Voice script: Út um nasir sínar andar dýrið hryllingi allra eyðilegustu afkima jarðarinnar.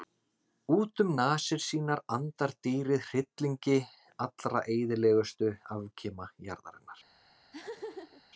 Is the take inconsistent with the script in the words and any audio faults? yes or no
yes